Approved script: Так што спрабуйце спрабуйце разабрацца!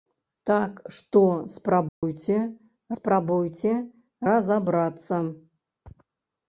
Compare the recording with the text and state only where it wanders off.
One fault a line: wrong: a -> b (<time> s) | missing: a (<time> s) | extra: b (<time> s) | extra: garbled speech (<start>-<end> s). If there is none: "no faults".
no faults